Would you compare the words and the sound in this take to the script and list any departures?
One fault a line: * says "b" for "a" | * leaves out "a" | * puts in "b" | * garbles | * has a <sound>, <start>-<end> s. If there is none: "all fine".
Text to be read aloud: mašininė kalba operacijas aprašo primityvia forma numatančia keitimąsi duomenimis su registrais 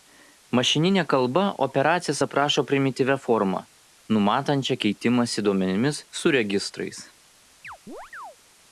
* has a chirp, 7.6-8.4 s